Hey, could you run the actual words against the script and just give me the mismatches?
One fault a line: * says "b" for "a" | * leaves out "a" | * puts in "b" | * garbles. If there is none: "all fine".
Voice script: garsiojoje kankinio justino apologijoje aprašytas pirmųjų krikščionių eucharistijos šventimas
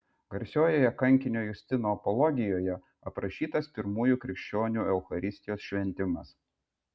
all fine